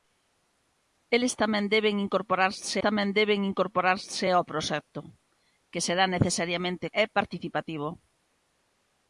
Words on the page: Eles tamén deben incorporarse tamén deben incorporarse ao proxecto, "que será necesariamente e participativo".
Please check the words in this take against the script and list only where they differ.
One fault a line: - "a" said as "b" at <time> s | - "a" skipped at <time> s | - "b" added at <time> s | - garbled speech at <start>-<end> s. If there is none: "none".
none